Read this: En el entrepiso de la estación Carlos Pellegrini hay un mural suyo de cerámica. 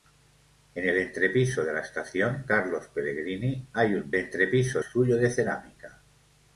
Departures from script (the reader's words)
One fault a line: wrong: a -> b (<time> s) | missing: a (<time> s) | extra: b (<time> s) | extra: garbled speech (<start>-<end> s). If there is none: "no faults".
wrong: mural -> entrepiso (4.1 s)